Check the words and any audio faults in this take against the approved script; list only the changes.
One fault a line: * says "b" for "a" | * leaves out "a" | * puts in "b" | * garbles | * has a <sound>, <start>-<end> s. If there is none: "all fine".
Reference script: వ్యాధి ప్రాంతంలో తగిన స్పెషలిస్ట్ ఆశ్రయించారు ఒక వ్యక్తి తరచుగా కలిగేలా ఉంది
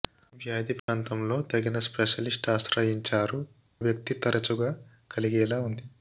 * has a dropout, 0.8-0.9 s
* leaves out "ఒక"